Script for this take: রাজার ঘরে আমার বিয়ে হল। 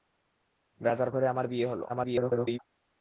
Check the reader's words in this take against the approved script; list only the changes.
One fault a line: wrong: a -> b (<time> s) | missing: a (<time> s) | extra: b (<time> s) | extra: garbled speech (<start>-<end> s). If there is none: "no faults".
extra: garbled speech (1.9-2.6 s)